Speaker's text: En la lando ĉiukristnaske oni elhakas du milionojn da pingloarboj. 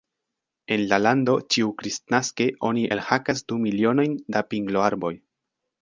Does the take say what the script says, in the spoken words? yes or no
yes